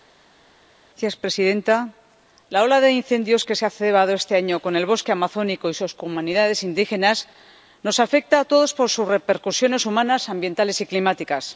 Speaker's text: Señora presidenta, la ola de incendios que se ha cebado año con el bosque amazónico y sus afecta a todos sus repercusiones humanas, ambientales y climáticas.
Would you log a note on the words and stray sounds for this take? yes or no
yes